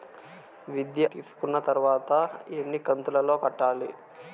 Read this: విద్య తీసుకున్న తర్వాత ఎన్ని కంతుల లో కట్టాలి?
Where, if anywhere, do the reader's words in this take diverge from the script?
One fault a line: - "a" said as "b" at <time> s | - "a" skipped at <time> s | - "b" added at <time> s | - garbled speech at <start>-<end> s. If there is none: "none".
none